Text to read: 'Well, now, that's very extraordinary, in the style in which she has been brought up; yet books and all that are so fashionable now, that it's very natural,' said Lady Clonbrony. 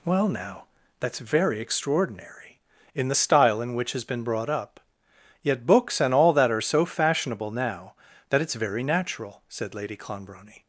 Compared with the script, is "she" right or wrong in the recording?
wrong